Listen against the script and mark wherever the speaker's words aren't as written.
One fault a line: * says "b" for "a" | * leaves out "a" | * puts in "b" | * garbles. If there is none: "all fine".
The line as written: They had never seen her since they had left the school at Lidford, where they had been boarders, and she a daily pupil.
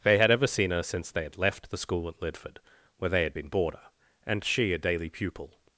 * says "ever" for "never"
* says "boarder" for "boarders"